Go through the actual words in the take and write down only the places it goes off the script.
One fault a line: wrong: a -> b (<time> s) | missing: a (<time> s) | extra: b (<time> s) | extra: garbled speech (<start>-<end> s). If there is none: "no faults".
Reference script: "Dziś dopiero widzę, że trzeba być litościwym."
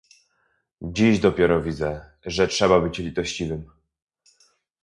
no faults